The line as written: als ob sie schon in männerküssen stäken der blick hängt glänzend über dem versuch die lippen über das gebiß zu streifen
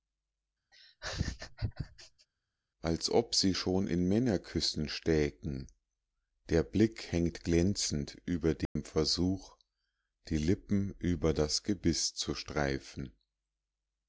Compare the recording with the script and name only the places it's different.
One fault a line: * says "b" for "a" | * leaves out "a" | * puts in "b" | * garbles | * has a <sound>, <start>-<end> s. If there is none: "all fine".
* has a laugh, 0.7-2.3 s
* has a dropout, 8.7-8.8 s